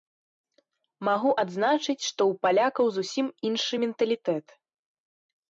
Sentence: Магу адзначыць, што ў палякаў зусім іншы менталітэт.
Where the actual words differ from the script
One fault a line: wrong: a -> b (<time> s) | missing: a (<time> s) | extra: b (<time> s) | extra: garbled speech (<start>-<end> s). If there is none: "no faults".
no faults